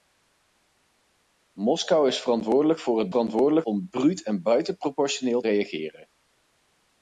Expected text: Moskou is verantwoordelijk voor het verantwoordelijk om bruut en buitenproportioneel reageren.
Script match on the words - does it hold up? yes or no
yes